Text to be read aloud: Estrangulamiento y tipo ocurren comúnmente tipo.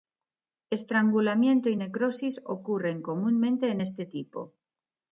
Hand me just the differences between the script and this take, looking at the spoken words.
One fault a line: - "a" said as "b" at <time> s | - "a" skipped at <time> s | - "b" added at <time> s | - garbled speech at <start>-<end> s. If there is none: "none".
- "tipo" said as "necrosis" at 1.8 s
- "en este" added at 3.7 s